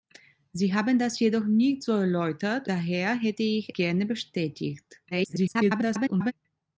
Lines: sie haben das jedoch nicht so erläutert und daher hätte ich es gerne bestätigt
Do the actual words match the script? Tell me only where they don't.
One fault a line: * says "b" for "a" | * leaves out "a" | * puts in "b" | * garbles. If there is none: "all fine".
* leaves out "und"
* leaves out "es"
* garbles